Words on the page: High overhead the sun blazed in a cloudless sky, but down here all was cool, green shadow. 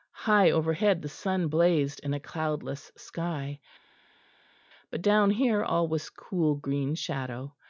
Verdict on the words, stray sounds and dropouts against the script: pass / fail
pass